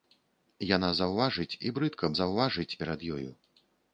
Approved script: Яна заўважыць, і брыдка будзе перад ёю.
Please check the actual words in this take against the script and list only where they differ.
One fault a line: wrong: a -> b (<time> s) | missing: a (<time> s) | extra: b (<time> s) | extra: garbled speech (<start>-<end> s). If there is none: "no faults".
wrong: будзе -> заўважыць (2.2 s)